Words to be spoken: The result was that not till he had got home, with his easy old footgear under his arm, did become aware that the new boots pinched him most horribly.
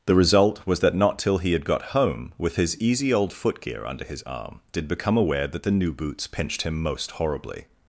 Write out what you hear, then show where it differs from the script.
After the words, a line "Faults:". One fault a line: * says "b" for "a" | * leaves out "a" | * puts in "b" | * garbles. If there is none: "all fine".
The result was that not till he had got home, with his easy old footgear under his arm, did become aware that the new boots pinched him most horribly.
Faults:
all fine